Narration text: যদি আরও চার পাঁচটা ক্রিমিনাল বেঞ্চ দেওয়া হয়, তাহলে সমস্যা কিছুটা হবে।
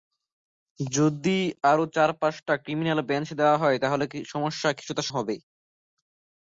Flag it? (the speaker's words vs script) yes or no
no